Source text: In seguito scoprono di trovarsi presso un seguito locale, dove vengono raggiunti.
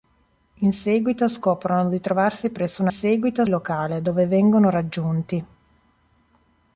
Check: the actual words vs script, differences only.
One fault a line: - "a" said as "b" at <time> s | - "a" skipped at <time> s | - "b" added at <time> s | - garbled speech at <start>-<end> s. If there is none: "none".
none